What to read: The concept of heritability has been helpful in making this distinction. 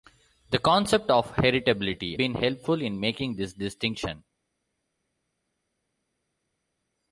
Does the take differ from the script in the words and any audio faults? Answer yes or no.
yes